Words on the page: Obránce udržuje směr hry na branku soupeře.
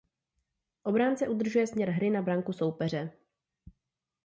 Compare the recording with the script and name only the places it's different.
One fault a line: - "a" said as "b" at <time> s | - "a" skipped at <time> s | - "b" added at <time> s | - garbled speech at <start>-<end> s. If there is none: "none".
none